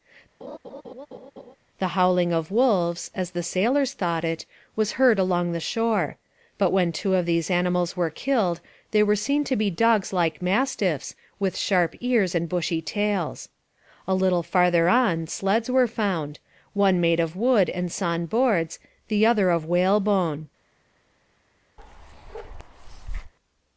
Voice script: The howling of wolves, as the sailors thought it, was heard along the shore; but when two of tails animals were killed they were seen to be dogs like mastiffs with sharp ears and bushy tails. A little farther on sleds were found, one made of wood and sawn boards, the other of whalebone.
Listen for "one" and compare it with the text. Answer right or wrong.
right